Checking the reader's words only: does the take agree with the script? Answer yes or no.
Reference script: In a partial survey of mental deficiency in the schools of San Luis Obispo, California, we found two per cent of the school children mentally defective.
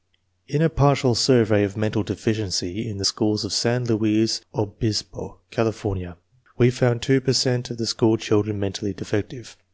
yes